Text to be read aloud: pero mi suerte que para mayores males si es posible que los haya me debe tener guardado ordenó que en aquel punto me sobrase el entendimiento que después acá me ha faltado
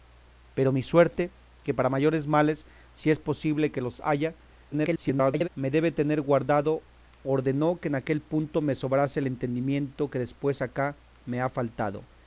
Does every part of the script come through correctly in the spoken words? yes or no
no